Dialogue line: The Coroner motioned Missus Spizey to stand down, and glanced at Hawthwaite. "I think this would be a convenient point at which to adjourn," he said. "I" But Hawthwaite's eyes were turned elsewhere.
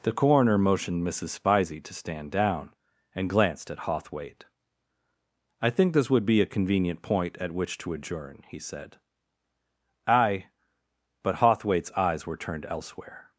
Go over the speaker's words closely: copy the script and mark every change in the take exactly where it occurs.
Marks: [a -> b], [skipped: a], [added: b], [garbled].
The Coroner motioned Missus Spizey to stand down, and glanced at Hawthwaite. "I think this would be a convenient point at which to adjourn," he said. "I" But Hawthwaite's eyes were turned elsewhere.